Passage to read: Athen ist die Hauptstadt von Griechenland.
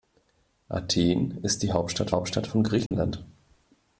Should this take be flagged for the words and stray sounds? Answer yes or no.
yes